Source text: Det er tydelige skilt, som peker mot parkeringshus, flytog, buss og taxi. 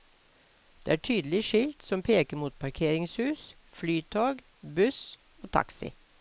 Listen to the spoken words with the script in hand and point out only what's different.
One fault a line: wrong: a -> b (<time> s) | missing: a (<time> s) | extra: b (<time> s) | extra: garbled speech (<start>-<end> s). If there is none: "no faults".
no faults